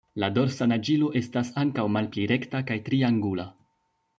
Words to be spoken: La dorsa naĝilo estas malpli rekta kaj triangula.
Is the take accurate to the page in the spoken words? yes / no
no